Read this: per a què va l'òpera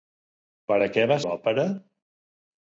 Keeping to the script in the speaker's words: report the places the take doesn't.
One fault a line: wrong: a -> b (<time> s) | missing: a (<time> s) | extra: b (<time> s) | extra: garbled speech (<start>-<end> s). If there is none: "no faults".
no faults